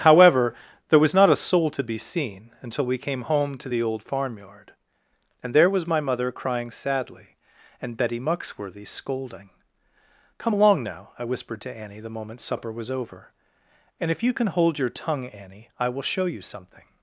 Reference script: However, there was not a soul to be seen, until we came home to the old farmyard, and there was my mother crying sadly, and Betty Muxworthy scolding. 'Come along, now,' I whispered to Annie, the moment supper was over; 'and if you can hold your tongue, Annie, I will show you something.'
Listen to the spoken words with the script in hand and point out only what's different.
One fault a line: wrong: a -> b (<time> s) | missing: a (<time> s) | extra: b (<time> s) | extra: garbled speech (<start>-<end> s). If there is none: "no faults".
no faults